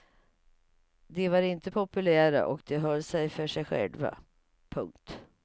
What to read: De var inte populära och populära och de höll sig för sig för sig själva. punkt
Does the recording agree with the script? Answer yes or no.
no